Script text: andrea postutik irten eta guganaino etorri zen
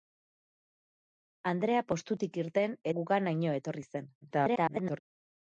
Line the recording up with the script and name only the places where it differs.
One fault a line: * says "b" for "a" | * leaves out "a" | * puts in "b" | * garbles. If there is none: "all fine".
* leaves out "eta"
* garbles